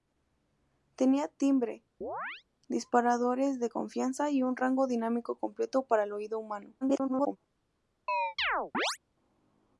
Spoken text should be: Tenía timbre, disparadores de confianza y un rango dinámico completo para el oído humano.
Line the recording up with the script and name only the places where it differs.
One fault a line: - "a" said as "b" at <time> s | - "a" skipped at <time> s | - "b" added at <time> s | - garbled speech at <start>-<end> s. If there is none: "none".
- garbled speech at 6.8-7.4 s